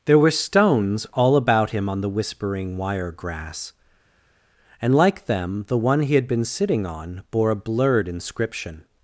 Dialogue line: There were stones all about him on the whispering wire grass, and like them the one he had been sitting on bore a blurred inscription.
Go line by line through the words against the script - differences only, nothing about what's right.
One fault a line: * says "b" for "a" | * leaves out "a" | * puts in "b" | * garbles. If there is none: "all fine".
all fine